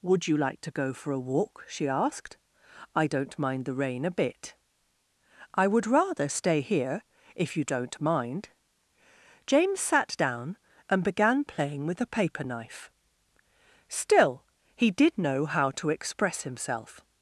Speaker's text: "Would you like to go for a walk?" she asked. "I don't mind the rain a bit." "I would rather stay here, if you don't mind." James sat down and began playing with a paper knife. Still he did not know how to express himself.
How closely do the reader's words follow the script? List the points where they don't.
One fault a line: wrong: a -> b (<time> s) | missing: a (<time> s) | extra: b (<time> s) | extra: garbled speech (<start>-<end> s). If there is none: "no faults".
missing: not (15.2 s)